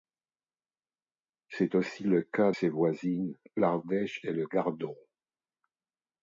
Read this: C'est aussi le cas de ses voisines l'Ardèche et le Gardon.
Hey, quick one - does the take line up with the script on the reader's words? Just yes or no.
no